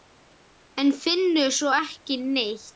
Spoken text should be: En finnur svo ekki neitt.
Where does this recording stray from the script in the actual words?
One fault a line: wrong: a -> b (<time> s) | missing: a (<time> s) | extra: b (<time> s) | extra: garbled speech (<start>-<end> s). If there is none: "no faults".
no faults